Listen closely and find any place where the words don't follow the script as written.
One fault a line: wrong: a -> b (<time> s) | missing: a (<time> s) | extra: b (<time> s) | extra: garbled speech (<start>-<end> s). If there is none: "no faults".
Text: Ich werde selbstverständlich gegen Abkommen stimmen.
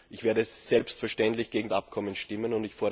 no faults